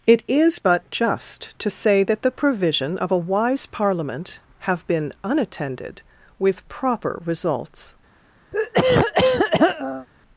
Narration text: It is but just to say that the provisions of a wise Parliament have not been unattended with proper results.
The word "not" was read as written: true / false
false